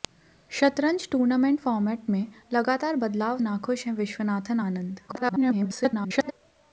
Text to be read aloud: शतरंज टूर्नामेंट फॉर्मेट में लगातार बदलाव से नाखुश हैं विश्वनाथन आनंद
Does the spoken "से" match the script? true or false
false